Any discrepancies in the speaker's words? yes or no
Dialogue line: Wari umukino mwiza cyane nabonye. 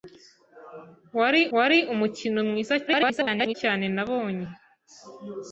yes